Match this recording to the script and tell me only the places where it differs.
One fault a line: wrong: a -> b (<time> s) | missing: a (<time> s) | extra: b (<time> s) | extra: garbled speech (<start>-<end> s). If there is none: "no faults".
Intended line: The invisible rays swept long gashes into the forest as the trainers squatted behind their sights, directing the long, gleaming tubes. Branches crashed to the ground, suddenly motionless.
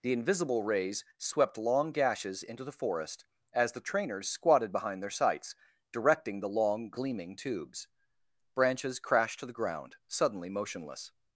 no faults